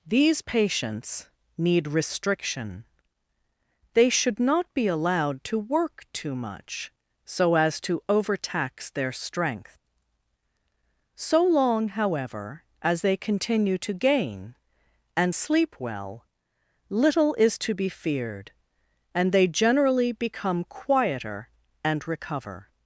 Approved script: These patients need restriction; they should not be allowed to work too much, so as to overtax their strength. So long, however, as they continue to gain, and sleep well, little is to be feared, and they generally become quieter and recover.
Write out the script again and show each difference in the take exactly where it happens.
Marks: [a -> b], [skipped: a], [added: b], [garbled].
These patients need restriction; they should not be allowed to work too much, so as to overtax their strength. So long, however, as they continue to gain, and sleep well, little is to be feared, and they generally become quieter and recover.